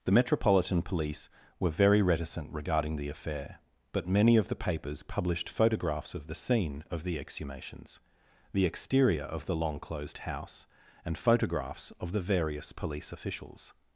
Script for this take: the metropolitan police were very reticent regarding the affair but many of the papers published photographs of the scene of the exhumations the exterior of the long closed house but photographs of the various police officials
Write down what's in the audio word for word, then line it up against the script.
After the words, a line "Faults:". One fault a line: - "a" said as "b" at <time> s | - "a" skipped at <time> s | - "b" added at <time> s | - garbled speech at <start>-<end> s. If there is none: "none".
the metropolitan police were very reticent regarding the affair but many of the papers published photographs of the scene of the exhumations the exterior of the long closed house and photographs of the various police officials
Faults:
- "but" said as "and" at 11.1 s